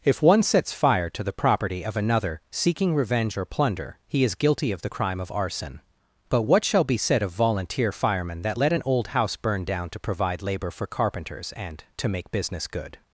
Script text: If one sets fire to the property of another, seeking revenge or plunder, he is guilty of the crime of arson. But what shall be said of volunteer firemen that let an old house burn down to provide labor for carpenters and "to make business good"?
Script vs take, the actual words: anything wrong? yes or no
no